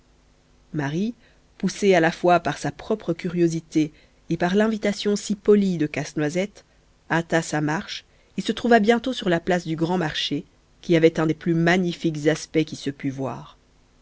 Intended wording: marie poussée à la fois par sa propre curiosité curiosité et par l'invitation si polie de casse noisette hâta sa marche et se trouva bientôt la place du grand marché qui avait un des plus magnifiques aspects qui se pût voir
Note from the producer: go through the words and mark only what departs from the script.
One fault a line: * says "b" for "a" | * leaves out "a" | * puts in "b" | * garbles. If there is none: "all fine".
* leaves out "curiosité"
* puts in "sur"